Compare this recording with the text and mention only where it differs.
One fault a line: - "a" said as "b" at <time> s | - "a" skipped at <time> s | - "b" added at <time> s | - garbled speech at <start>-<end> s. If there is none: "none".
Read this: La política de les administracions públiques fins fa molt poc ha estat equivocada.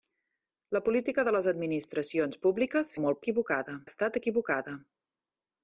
- "fins" skipped at 2.9 s
- "poc" said as "equivocada" at 3.3 s